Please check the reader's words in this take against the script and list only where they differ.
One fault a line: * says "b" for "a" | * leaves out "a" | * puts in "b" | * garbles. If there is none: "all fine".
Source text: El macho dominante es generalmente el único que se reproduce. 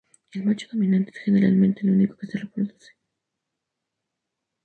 all fine